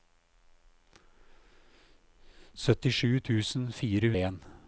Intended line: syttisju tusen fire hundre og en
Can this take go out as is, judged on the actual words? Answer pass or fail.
fail